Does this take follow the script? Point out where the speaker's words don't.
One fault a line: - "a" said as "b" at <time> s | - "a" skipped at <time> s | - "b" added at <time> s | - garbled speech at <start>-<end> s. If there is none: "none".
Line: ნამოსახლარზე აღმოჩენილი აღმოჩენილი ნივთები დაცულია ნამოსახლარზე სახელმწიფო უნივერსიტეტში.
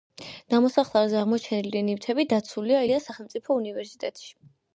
- "აღმოჩენილი" skipped at 1.8 s
- "ნამოსახლარზე" said as "ილიას" at 2.9 s